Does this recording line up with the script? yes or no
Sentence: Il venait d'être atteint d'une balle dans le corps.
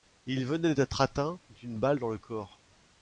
yes